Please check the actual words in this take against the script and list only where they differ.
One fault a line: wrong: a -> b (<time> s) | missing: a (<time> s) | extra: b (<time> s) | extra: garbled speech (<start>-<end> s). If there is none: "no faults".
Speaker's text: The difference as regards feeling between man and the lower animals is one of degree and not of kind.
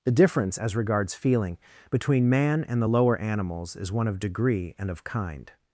missing: not (4.9 s)